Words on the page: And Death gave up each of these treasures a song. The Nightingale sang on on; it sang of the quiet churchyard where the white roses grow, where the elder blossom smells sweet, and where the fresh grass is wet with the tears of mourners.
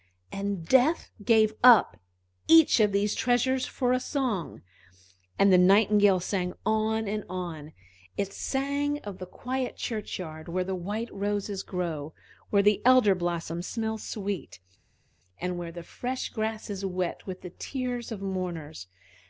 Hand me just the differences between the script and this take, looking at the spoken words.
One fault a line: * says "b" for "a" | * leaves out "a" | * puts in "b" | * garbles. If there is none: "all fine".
* puts in "for"
* puts in "And"
* puts in "and"